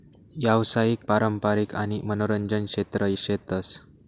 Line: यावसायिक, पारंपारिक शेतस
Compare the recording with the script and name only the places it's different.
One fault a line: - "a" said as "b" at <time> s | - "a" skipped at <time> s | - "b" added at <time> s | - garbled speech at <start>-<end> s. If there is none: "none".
- "आणि मनोरंजन क्षेत्र" added at 1.7 s